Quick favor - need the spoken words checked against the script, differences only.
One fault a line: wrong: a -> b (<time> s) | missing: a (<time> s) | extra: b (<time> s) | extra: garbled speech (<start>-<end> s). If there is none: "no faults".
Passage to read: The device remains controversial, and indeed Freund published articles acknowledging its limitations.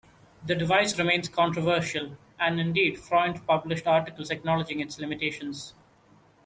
no faults